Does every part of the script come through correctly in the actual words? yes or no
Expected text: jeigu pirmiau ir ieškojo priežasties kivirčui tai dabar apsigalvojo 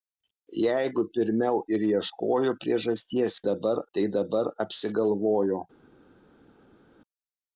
no